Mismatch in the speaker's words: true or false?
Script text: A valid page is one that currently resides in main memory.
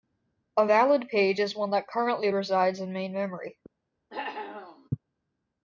false